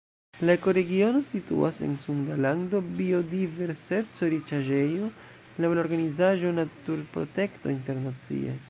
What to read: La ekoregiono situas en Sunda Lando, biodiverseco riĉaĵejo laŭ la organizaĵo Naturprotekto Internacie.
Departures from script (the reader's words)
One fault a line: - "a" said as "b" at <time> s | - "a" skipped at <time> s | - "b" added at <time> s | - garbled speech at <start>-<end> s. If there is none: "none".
none